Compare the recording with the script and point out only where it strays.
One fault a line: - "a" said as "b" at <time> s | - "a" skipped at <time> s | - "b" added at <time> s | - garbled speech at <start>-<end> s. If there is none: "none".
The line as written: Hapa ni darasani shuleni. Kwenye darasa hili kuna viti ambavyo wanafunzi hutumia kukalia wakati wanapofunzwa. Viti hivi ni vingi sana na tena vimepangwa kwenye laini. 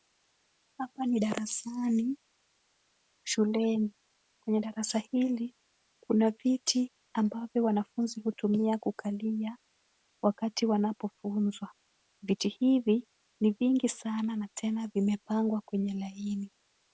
none